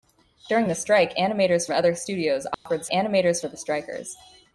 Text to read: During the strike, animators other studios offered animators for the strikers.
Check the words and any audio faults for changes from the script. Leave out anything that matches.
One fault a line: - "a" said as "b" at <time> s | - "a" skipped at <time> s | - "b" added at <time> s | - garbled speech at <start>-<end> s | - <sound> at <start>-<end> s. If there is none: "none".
- dropout at 2.5-2.7 s